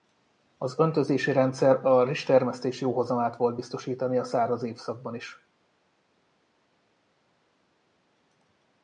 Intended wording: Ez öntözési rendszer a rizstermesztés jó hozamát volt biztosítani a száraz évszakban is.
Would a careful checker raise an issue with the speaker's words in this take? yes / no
yes